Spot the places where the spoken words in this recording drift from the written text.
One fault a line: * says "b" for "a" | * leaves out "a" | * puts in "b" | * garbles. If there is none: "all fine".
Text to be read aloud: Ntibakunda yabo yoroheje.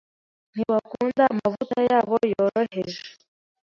* puts in "amavuta"